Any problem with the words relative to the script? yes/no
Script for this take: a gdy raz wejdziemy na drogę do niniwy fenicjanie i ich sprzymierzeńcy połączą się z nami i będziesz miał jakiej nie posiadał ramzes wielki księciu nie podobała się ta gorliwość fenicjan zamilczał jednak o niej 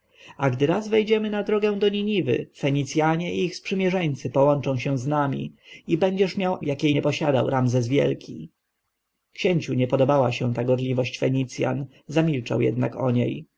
no